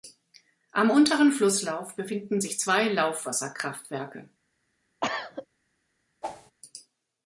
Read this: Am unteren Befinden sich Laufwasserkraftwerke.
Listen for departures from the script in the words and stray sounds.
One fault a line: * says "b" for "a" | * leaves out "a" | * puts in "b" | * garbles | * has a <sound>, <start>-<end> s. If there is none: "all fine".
* puts in "Flusslauf"
* puts in "zwei"
* has a cough, 5.0-5.5 s
* has a whoosh, 6.2-6.5 s